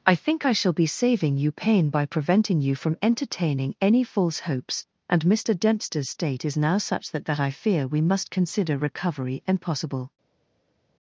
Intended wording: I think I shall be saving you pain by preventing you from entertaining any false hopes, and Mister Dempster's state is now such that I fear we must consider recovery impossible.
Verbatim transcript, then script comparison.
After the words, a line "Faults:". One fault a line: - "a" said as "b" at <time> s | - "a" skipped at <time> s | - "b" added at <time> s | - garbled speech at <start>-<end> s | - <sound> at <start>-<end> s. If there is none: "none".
I think I shall be saving you pain by preventing you from entertaining any false hopes, and Mister Dempster's state is now such that that I fear we must consider recovery impossible.
Faults:
- "that" added at 7.3 s